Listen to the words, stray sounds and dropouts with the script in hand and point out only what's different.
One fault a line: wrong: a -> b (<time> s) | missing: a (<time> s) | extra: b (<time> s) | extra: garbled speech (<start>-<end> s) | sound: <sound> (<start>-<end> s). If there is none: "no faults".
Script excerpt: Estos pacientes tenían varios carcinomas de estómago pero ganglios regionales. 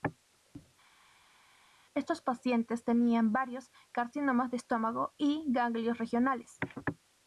wrong: pero -> y (5.2 s)